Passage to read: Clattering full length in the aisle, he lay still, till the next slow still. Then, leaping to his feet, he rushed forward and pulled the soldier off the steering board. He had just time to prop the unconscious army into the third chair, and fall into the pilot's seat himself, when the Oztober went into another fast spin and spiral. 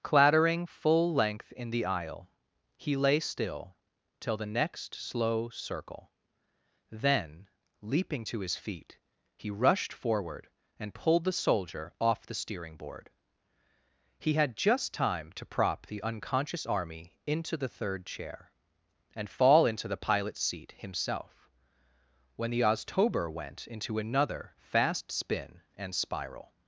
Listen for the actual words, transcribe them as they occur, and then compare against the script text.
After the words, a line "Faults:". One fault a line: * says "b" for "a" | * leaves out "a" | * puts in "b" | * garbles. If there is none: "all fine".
Clattering full length in the aisle, he lay still, till the next slow circle. Then, leaping to his feet, he rushed forward and pulled the soldier off the steering board. He had just time to prop the unconscious army into the third chair, and fall into the pilot's seat himself, when the Oztober went into another fast spin and spiral.
Faults:
* says "circle" for "still"